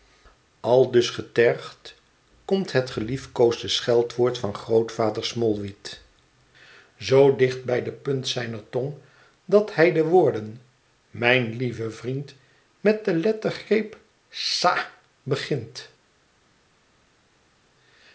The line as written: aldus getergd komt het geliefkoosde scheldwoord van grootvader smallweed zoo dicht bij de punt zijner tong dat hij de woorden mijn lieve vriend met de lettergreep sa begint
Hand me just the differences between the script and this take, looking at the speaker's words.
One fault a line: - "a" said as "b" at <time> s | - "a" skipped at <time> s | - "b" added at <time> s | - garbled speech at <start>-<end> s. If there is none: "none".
none